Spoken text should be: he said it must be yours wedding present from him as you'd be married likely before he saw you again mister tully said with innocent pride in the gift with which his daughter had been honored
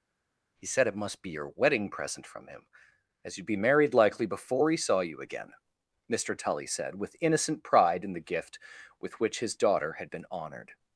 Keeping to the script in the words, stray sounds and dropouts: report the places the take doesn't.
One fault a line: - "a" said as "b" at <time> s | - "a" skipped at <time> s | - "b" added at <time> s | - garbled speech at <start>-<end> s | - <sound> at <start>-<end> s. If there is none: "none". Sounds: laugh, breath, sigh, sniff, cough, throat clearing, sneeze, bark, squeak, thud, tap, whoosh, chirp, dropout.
- "yours" said as "your" at 1.3 s